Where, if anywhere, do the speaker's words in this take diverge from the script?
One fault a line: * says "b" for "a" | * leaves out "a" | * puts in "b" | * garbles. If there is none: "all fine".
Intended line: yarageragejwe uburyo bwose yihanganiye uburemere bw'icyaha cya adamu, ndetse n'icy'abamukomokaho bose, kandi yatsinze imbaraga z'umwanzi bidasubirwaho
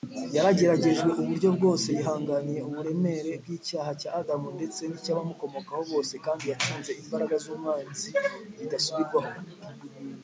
all fine